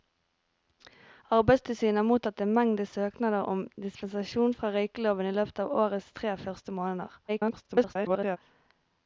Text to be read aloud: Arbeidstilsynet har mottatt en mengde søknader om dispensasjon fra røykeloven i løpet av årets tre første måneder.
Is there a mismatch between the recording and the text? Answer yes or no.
yes